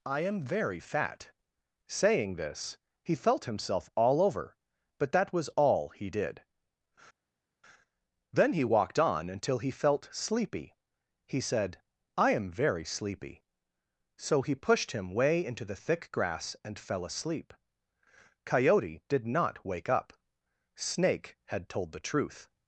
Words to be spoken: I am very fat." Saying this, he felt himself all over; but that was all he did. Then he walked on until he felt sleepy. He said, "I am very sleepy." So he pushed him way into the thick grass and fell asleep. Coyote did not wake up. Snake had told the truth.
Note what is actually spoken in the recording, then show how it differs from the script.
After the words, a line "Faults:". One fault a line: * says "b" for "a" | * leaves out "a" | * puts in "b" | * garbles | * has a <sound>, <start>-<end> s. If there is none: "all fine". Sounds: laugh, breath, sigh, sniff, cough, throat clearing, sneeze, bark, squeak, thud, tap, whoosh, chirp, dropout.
I am very fat." Saying this, he felt himself all over; but that was all he did. Then he walked on until he felt sleepy. He said, "I am very sleepy." So he pushed him way into the thick grass and fell asleep. Coyote did not wake up. Snake had told the truth.
Faults:
all fine